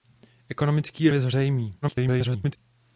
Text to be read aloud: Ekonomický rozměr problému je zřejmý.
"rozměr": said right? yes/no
no